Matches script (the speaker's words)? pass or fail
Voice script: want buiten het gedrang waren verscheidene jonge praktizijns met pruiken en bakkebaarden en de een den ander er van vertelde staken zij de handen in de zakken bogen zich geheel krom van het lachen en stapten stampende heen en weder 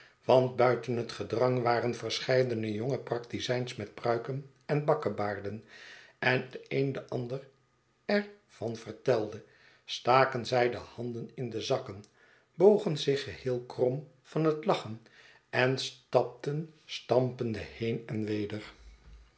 pass